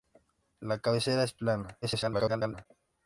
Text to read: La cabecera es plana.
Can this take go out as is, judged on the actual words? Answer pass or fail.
fail